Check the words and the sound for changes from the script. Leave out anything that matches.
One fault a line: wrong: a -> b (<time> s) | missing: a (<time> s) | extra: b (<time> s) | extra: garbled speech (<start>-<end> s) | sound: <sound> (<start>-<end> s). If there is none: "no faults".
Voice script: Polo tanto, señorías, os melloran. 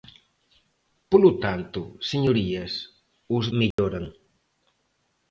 sound: dropout (3.7-3.8 s)